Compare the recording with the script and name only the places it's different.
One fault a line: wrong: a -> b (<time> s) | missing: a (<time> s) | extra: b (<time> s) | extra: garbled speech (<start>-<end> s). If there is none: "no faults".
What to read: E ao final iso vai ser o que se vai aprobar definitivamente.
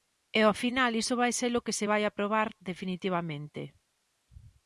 no faults